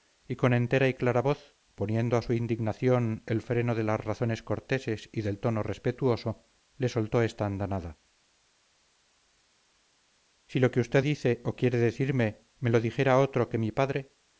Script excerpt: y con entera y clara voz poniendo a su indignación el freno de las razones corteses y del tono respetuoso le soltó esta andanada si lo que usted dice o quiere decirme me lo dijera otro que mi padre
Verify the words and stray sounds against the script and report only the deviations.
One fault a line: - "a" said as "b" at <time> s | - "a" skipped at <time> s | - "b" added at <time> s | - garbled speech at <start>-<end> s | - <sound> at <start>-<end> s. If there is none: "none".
none